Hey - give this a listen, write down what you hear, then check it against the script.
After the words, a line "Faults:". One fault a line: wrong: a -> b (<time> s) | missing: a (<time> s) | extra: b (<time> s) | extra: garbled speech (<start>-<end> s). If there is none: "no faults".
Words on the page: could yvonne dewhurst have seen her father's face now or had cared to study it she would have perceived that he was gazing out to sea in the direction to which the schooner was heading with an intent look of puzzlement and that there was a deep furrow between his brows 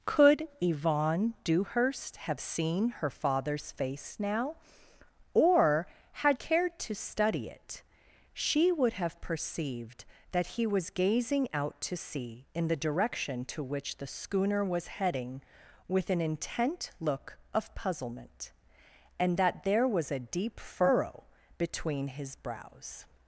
could yvonne dewhurst have seen her father's face now or had cared to study it she would have perceived that he was gazing out to sea in the direction to which the schooner was heading with an intent look of puzzlement and that there was a deep furrow between his brows
Faults:
no faults